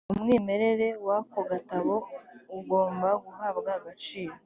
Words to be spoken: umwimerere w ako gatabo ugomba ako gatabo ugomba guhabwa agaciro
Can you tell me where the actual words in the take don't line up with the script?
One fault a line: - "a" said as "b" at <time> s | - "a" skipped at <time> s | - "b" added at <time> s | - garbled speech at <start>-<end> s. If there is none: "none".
- "ako gatabo ugomba" skipped at 3.1 s